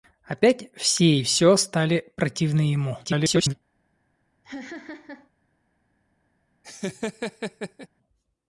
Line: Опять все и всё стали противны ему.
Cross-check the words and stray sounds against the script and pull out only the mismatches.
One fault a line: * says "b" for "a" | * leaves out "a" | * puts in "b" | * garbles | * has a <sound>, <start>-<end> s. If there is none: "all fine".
* garbles
* has a laugh, 4.4-5.3 s
* has a laugh, 6.6-7.9 s